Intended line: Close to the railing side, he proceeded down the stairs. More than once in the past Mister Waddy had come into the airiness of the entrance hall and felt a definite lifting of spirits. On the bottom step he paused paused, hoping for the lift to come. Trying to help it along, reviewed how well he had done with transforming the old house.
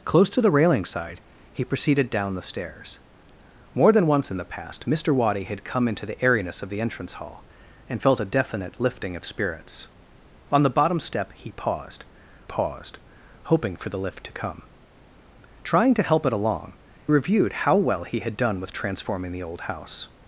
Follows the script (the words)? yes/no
yes